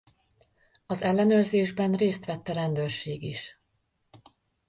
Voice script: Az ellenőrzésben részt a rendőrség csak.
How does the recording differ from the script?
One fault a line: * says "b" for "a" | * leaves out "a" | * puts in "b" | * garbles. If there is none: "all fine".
* puts in "vett"
* says "is" for "csak"